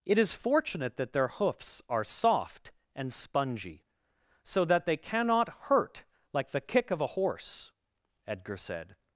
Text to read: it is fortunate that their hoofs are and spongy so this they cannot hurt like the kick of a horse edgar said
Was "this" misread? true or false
true